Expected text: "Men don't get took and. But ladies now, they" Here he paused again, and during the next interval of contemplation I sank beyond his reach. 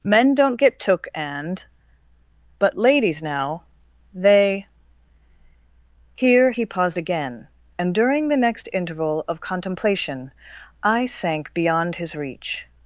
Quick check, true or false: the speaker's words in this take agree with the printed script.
true